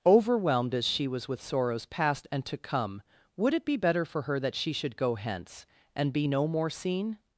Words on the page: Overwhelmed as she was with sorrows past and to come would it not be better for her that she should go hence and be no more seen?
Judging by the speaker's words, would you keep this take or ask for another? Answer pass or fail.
fail